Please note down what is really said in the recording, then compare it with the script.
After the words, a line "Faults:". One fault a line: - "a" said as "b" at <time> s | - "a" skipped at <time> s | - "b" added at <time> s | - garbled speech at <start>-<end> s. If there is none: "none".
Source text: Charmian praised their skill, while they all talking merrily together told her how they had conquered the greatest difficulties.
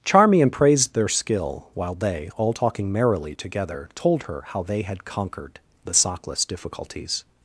Charmian praised their skill, while they all talking merrily together told her how they had conquered the sockless difficulties.
Faults:
- "greatest" said as "sockless" at 5.9 s